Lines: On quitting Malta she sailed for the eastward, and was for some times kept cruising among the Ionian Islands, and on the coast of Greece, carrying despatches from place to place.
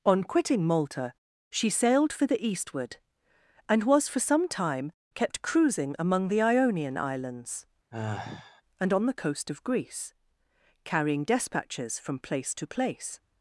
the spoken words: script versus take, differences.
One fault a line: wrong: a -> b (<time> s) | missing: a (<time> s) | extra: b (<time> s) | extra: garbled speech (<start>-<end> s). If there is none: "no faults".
wrong: times -> time (4.5 s)